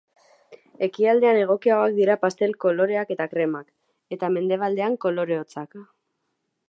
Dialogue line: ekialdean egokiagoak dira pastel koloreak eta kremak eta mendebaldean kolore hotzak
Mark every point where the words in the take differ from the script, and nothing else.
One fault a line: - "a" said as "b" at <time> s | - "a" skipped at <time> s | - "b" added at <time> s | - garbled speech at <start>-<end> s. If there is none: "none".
none